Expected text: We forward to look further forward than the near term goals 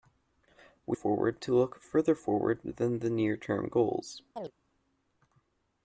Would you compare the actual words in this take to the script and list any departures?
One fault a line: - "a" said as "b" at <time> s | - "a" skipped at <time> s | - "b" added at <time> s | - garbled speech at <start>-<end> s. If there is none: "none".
none